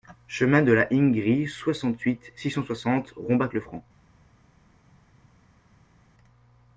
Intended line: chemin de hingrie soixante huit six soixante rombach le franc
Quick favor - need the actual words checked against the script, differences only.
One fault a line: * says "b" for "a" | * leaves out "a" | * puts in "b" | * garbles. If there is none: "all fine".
* puts in "la"
* puts in "cent"